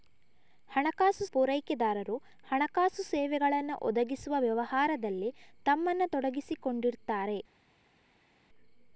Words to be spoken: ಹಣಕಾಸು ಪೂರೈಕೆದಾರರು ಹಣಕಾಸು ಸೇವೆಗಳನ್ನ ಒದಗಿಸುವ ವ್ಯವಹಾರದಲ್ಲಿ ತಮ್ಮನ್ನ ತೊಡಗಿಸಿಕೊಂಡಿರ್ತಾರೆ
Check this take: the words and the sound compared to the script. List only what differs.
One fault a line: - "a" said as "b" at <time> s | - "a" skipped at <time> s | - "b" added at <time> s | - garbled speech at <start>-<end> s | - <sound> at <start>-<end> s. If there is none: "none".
none